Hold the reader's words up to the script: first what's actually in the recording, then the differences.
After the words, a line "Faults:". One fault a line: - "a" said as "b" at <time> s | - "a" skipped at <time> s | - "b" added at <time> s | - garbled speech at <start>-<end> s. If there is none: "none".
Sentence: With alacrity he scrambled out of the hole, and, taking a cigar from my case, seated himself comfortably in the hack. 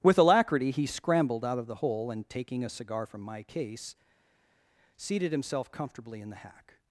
With alacrity he scrambled out of the hole, and, taking a cigar from my case, seated himself comfortably in the hack.
Faults:
none